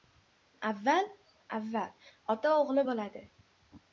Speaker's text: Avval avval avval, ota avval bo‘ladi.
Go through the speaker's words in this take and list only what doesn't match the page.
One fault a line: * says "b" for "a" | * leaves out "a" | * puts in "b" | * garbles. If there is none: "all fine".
* leaves out "avval"
* says "o‘g‘li" for "avval"